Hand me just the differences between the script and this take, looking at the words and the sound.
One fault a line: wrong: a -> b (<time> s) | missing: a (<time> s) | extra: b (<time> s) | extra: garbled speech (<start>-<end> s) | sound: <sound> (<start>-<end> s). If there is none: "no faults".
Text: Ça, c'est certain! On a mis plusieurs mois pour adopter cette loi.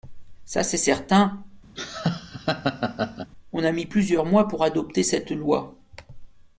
sound: laugh (1.8-3.3 s)